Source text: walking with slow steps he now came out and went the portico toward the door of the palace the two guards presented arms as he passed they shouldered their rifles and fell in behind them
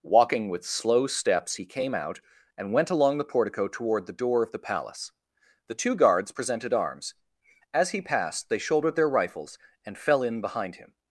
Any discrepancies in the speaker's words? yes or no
yes